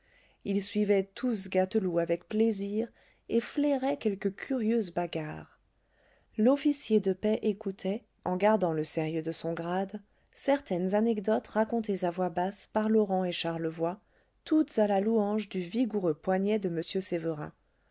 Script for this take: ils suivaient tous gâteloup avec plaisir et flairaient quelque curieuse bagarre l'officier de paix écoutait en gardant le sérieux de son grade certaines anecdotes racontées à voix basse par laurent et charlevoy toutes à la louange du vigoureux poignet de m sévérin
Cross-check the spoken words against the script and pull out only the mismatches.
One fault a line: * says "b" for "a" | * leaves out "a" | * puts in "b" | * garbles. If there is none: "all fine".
all fine